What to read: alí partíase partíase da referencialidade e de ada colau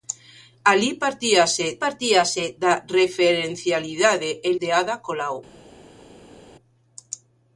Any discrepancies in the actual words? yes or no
no